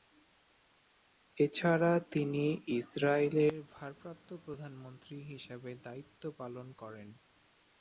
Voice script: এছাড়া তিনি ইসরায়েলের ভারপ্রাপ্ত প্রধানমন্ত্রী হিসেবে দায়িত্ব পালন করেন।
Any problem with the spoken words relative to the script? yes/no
no